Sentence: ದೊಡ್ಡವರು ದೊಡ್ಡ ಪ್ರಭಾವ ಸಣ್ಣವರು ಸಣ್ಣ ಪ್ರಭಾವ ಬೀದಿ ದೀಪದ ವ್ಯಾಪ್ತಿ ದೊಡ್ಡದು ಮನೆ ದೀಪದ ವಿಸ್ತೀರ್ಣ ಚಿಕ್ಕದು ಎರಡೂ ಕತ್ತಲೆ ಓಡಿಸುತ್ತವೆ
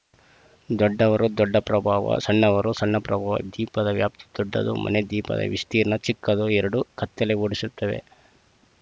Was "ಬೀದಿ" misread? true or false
true